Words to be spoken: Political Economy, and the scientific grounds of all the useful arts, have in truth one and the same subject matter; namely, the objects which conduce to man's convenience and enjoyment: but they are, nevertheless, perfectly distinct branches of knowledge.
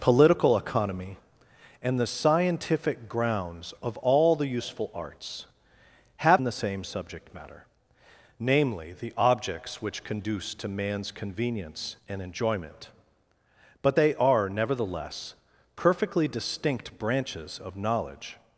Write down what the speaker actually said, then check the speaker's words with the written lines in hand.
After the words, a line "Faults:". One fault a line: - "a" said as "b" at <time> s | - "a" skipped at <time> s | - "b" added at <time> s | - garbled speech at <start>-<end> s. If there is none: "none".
Political Economy, and the scientific grounds of all the useful arts, have and the same subject matter; namely, the objects which conduce to man's convenience and enjoyment: but they are, nevertheless, perfectly distinct branches of knowledge.
Faults:
- "in truth one" skipped at 6.4 s